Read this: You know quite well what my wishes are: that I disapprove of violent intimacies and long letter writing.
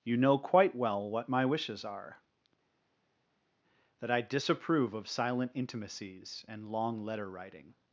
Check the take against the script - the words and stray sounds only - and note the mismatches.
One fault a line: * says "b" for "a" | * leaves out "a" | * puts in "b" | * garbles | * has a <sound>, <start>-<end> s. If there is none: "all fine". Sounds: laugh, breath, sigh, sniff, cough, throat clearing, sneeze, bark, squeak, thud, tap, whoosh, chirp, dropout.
* says "silent" for "violent"